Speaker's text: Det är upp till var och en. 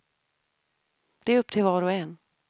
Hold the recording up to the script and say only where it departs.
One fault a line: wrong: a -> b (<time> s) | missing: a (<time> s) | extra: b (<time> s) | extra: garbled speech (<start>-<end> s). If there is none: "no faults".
no faults